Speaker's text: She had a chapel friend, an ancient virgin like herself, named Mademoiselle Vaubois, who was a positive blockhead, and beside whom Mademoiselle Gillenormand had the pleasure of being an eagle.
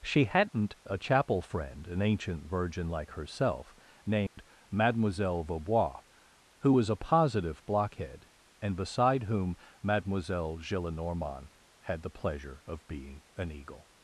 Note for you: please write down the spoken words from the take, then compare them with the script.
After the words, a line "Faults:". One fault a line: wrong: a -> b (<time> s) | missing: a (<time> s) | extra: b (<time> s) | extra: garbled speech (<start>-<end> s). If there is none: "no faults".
She hadn't a chapel friend, an ancient virgin like herself, named Mademoiselle Vaubois, who was a positive blockhead, and beside whom Mademoiselle Gillenormand had the pleasure of being an eagle.
Faults:
wrong: had -> hadn't (0.2 s)